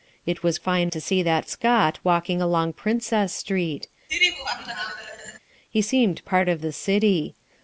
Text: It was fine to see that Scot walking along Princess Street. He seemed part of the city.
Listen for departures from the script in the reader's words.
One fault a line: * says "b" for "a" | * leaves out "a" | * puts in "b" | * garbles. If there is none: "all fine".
all fine